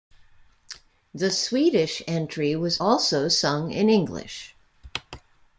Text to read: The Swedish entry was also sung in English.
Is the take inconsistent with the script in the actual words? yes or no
no